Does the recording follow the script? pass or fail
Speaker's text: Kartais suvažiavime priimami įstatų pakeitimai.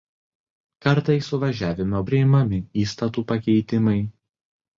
pass